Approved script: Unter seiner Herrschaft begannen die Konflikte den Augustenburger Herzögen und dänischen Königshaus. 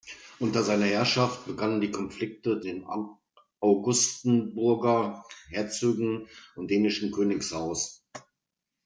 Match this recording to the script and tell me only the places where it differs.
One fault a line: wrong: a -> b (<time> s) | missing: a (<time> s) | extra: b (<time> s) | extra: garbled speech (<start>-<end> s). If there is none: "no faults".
no faults